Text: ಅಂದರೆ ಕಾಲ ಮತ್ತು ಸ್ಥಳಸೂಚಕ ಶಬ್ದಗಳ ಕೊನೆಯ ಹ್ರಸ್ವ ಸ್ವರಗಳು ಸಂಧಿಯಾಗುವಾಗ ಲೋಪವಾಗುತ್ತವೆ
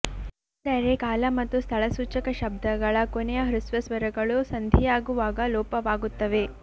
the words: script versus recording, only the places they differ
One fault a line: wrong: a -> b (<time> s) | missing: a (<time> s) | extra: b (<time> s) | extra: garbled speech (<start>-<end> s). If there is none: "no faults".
no faults